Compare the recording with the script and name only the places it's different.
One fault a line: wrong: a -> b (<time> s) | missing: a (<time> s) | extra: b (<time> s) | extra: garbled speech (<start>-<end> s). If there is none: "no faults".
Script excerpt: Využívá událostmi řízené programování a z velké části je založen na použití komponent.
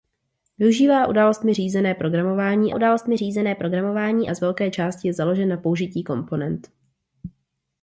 extra: událostmi řízené programování (2.7 s)